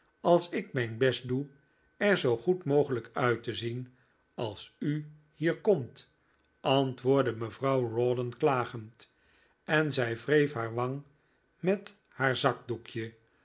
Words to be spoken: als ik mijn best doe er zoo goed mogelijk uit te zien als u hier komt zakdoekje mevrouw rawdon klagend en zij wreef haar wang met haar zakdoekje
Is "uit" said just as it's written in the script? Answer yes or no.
yes